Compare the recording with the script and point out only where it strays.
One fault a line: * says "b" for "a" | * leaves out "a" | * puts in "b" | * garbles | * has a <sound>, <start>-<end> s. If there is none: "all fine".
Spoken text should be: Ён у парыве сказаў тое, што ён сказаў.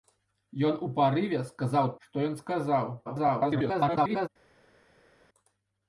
* leaves out "тое"
* garbles